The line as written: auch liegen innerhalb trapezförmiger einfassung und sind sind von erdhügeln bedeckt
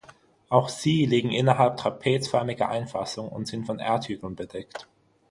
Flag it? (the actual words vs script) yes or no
yes